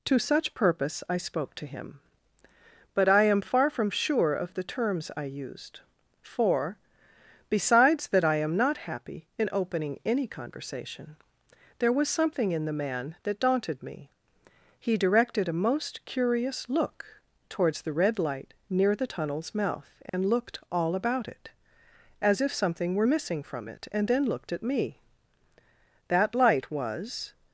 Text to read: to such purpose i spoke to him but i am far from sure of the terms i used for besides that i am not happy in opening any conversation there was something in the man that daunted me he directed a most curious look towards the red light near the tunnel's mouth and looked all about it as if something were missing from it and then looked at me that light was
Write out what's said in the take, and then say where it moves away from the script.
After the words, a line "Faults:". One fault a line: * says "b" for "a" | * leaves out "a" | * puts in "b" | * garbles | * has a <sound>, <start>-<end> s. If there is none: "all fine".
to such purpose i spoke to him but i am far from sure of the terms i used for besides that i am not happy in opening any conversation there was something in the man that daunted me he directed a most curious look towards the red light near the tunnel's mouth and looked all about it as if something were missing from it and then looked at me that light was
Faults:
* has a dropout, 20.1-20.1 s